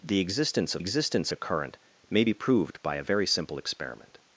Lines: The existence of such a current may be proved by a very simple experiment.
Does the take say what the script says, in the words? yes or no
no